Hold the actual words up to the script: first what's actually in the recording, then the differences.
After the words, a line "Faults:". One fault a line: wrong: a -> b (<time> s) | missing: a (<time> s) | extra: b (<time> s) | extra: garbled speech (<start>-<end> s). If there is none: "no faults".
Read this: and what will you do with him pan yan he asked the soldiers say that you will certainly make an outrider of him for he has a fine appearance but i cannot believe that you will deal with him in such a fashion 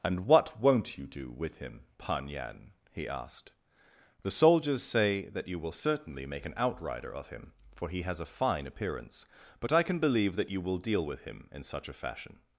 and what won't you do with him pan yan he asked the soldiers say that you will certainly make an outrider of him for he has a fine appearance but i can believe that you will deal with him in such a fashion
Faults:
wrong: will -> won't (0.6 s)
wrong: cannot -> can (9.8 s)